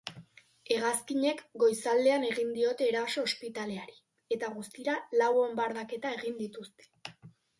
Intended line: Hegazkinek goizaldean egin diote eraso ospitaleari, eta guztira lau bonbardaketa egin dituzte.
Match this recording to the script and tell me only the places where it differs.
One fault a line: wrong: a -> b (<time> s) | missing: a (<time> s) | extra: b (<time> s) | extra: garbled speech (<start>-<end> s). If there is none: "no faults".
no faults